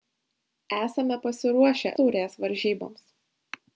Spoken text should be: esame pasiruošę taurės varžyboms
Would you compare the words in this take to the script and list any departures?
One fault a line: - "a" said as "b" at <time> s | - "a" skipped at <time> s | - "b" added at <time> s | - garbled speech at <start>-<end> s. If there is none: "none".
none